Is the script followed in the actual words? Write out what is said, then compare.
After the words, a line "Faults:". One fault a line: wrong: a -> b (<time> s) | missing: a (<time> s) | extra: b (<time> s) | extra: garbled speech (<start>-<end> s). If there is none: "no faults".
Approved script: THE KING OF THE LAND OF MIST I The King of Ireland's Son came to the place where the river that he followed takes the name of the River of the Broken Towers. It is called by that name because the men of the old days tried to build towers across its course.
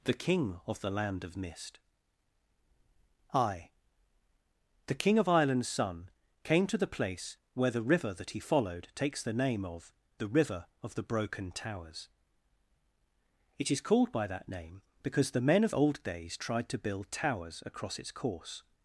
THE KING OF THE LAND OF MIST I The King of Ireland's Son came to the place where the river that he followed takes the name of the River of the Broken Towers. It is called by that name because the men of old days tried to build towers across its course.
Faults:
missing: the (15.8 s)